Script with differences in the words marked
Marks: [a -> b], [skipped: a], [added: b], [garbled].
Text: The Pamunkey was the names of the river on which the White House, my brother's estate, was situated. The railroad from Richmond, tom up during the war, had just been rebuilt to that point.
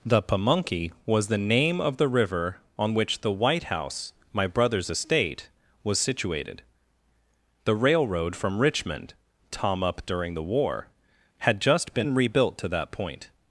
The Pamunkey was the [names -> name] of the river on which the White House, my brother's estate, was situated. The railroad from Richmond, tom up during the war, had just been rebuilt to that point.